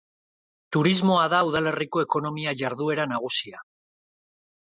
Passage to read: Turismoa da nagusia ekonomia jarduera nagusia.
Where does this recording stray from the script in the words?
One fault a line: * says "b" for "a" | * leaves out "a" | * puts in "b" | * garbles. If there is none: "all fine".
* says "udalerriko" for "nagusia"